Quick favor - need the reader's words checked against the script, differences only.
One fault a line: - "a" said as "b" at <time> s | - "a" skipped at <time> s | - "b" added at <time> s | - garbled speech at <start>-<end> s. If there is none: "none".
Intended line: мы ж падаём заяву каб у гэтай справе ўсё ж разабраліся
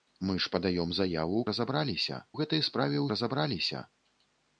- "каб" said as "разабраліся" at 1.5 s
- "ўсё ж" skipped at 3.0 s